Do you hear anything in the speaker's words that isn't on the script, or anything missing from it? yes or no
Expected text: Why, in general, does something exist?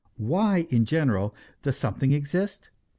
no